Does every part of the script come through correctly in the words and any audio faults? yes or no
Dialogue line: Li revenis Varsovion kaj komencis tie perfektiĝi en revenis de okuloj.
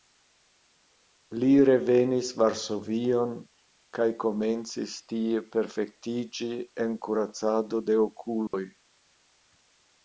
no